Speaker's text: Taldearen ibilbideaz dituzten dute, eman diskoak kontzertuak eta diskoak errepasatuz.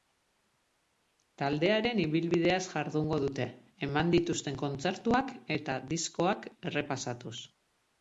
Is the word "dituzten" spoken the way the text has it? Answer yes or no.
no